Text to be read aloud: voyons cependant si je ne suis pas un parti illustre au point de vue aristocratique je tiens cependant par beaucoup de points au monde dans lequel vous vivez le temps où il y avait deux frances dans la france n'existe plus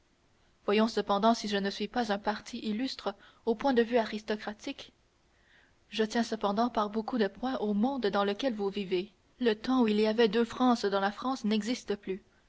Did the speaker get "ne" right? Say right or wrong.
right